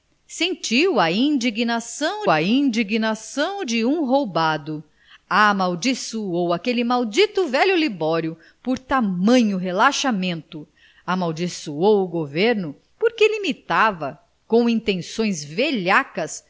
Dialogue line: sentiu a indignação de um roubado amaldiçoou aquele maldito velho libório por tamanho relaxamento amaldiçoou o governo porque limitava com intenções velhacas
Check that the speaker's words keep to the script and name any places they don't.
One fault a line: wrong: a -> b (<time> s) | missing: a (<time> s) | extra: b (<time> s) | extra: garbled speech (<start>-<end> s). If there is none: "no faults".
extra: a indignação (2.3 s)